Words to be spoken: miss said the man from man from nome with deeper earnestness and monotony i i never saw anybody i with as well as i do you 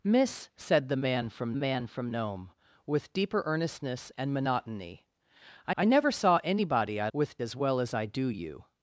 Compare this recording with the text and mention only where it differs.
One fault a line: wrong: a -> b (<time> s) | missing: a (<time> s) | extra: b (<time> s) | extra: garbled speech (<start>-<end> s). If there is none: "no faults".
no faults